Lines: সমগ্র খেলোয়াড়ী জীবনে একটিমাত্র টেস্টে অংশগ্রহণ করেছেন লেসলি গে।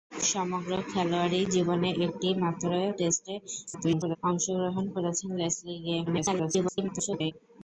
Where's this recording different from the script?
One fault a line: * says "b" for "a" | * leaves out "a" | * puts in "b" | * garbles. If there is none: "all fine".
* garbles
* garbles